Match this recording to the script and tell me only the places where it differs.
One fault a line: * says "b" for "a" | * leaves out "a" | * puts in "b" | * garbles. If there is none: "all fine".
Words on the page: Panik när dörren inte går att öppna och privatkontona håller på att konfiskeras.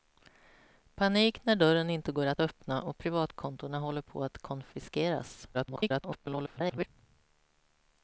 * garbles